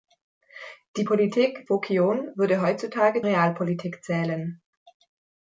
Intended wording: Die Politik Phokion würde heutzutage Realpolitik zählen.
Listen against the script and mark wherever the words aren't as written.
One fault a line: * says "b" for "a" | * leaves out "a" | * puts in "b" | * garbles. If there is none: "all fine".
all fine